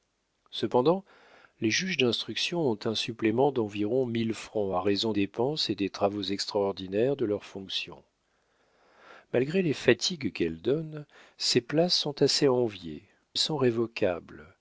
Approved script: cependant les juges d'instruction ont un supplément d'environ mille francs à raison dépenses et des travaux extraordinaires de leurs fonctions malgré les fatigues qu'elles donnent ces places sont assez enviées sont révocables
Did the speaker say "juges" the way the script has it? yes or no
yes